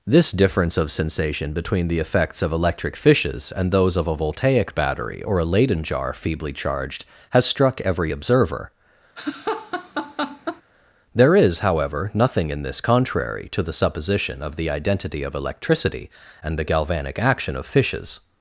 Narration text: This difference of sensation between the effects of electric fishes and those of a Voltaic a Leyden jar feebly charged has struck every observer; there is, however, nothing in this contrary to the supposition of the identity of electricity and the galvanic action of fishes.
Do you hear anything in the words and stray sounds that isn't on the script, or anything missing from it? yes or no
yes